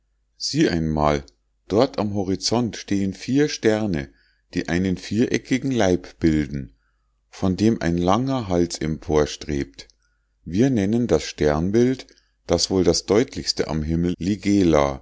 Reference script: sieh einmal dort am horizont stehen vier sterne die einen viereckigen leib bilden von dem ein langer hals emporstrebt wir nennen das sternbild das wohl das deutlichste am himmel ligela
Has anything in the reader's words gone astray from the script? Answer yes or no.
no